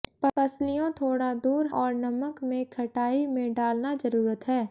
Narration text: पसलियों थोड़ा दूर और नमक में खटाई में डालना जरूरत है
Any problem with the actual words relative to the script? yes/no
no